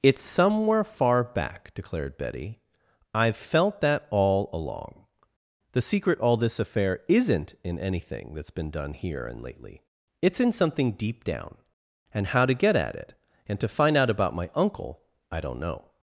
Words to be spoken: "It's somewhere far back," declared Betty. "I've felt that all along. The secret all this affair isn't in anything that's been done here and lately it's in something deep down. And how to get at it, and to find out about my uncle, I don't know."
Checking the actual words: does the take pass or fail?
pass